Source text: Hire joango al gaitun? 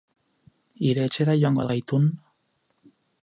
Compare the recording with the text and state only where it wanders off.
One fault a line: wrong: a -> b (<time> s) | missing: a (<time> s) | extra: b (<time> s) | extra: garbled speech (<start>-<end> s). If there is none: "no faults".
extra: etxera (1.1 s)